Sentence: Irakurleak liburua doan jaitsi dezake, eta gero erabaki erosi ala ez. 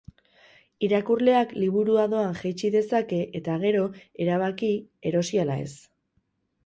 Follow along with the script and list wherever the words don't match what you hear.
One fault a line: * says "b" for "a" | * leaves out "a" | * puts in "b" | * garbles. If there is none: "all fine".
all fine